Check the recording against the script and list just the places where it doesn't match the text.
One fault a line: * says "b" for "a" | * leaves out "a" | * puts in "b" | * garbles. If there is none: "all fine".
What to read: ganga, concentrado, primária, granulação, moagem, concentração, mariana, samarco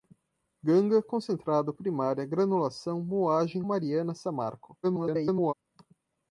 * leaves out "concentração"
* garbles